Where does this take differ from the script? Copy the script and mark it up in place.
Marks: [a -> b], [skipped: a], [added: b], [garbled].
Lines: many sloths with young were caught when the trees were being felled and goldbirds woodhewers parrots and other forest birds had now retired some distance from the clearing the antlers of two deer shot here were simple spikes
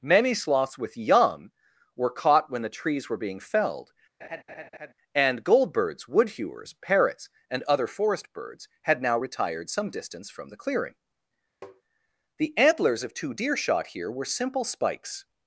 many sloths with young were caught when the trees were being felled and goldbirds woodhewers parrots and other forest birds had now retired some distance from the clearing the antlers of two deer shot here were simple spikes